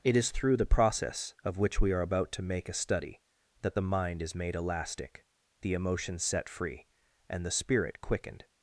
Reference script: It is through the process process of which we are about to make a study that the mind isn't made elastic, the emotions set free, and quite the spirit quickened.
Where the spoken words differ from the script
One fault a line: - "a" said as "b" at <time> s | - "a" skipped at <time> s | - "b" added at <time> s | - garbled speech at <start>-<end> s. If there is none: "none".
- "process" skipped at 1.4 s
- "isn't" said as "is" at 4.2 s
- "quite" skipped at 7.4 s